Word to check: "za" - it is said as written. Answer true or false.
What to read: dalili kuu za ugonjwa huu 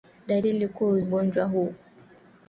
false